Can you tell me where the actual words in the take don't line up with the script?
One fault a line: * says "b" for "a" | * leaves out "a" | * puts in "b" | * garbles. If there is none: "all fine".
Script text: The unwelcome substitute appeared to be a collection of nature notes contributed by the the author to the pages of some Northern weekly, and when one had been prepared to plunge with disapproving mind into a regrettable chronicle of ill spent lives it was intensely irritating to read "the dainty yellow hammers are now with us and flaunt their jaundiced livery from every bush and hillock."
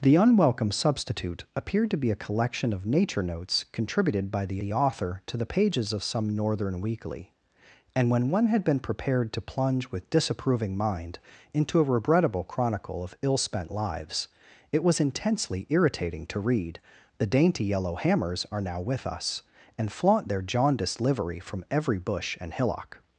all fine